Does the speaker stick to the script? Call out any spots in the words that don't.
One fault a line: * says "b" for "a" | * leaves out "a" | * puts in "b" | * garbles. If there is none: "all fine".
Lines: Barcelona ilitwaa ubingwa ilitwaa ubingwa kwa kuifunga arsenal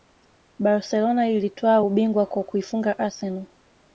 * leaves out "ilitwaa ubingwa"